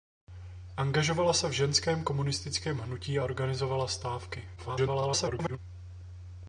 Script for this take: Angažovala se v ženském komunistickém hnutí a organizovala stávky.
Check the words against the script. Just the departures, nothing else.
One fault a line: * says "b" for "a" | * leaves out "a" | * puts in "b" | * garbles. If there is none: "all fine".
* garbles